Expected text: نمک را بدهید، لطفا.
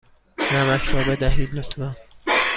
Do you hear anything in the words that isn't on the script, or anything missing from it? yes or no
no